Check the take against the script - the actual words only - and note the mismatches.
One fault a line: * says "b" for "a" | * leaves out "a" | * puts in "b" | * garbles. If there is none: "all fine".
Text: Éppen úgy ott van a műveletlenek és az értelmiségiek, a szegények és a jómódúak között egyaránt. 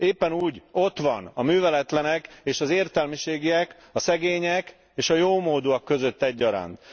all fine